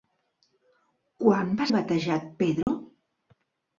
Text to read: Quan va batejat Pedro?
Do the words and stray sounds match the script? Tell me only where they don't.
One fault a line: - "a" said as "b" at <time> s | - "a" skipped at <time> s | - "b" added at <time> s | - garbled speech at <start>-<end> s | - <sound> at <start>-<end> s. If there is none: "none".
- dropout at 2.6-2.7 s